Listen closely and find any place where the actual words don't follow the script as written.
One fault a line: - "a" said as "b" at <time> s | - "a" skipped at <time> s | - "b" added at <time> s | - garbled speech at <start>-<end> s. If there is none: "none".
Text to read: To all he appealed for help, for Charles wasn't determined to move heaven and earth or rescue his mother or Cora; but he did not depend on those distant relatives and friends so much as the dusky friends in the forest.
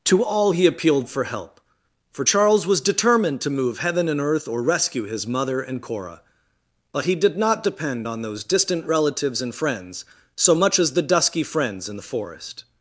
- "wasn't" said as "was" at 2.6 s
- "or" said as "and" at 5.6 s